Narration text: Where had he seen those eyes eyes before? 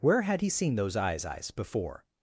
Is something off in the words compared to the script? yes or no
no